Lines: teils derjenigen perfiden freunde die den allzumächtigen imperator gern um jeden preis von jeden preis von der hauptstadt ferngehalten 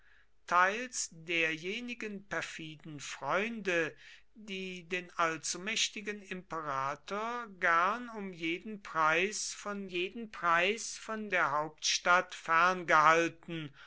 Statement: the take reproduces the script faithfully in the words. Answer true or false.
true